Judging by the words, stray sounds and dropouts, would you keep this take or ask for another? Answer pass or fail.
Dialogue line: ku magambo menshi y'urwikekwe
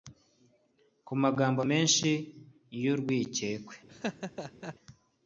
fail